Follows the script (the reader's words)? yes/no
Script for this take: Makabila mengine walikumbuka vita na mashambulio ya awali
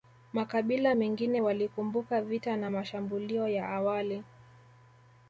yes